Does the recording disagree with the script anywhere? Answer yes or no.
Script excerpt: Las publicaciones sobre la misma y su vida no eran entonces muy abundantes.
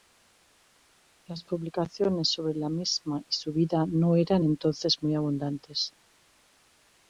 no